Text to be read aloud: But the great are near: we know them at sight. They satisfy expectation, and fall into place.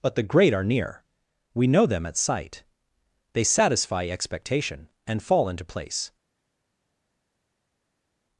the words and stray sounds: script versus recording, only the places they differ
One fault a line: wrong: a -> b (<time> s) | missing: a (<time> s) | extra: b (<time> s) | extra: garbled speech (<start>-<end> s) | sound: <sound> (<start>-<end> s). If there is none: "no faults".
no faults